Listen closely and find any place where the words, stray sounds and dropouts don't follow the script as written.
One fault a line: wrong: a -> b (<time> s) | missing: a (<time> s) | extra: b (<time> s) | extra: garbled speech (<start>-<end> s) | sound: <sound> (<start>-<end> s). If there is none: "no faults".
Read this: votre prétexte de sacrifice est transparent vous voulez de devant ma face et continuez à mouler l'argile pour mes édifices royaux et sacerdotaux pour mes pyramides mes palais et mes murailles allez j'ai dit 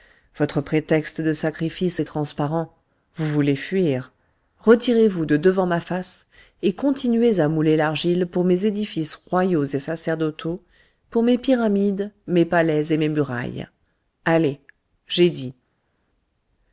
extra: fuir retirez vous (3.5 s)